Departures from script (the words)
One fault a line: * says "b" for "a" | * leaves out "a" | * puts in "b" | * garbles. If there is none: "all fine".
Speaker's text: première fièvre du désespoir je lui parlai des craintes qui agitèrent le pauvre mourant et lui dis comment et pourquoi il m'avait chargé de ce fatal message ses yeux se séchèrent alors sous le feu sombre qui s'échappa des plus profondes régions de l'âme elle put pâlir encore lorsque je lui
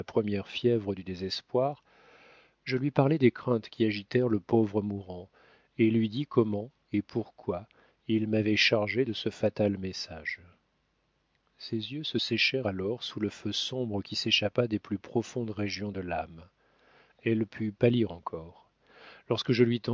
all fine